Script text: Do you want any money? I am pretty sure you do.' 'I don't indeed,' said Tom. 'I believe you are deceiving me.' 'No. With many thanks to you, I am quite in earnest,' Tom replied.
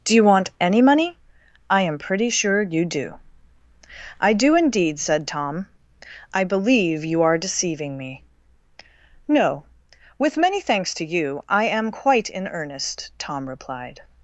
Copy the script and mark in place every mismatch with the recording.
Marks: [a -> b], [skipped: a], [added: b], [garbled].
Do you want any money? I am pretty sure you do.' 'I [don't -> do] indeed,' said Tom. 'I believe you are deceiving me.' 'No. With many thanks to you, I am quite in earnest,' Tom replied.